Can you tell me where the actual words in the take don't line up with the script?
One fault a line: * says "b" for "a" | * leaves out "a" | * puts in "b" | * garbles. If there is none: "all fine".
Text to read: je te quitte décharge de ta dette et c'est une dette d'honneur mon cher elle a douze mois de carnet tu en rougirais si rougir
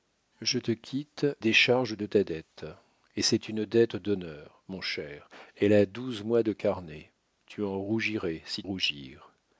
all fine